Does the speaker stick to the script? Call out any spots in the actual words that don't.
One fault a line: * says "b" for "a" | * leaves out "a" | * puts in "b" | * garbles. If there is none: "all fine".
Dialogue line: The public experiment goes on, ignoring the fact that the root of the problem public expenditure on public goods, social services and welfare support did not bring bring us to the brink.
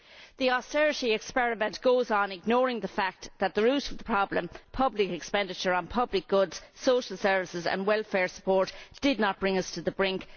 * says "austerity" for "public"
* leaves out "bring"